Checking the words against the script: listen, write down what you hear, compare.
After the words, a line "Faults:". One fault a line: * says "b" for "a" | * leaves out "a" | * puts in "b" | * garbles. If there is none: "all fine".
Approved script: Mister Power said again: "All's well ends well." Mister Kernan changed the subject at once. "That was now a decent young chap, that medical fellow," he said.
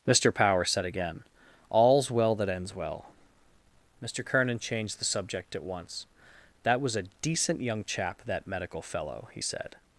Mister Power said again: "All's well that ends well." Mister Kernan changed the subject at once. "That was a decent young chap, that medical fellow," he said.
Faults:
* puts in "that"
* leaves out "now"